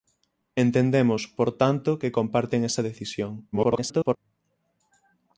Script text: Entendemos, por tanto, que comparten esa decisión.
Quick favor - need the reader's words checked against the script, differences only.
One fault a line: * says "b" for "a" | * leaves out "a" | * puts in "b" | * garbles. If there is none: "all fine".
* garbles